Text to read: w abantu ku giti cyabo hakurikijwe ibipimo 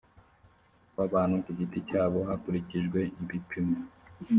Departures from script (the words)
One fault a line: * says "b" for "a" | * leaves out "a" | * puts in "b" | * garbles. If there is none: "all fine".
all fine